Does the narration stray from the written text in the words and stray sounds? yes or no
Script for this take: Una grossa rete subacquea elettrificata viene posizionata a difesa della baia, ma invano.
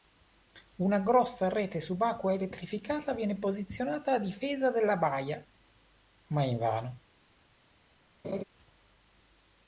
yes